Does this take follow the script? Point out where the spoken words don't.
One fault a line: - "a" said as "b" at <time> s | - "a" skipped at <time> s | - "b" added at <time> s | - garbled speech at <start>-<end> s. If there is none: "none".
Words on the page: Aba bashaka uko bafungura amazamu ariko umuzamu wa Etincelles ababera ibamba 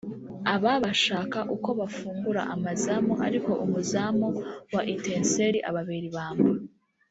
none